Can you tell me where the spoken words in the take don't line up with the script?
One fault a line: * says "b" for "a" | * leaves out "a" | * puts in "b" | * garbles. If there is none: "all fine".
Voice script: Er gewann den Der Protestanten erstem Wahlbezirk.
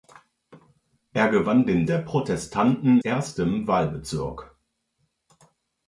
all fine